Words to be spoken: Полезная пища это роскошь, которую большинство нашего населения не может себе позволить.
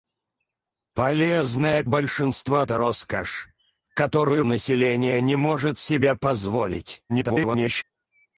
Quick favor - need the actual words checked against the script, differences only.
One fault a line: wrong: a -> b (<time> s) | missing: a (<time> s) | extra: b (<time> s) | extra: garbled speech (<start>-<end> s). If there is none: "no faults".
wrong: пища -> большинство (1.9 s)
missing: большинство нашего (4.4 s)
extra: garbled speech (7.1-7.8 s)